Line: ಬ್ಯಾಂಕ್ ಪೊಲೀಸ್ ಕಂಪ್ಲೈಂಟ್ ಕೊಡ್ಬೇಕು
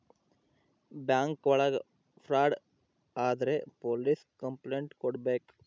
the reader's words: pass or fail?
fail